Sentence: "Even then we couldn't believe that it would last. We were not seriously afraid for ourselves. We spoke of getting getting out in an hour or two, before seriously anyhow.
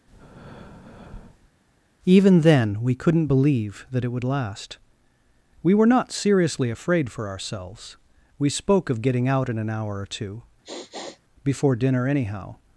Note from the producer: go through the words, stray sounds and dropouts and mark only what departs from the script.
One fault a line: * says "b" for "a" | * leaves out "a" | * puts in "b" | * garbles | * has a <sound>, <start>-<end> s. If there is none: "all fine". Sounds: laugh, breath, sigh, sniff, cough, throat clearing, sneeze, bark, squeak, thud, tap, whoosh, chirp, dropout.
* has a breath, 0.1-1.5 s
* leaves out "getting"
* has a sniff, 10.6-11.2 s
* says "dinner" for "seriously"